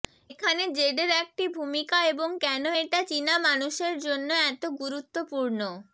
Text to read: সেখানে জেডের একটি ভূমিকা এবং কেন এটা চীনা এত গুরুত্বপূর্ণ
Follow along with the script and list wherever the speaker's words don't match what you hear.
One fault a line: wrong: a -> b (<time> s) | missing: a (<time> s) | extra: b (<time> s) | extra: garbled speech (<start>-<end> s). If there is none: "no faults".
wrong: সেখানে -> এখানে (0.3 s)
extra: মানুষের জন্য (3.5 s)